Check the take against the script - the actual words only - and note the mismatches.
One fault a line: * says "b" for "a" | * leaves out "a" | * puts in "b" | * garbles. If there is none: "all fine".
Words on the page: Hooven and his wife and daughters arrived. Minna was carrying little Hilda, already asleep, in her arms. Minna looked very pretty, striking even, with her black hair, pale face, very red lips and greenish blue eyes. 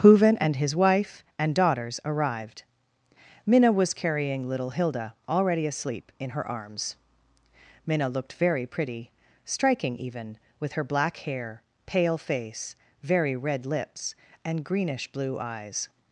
all fine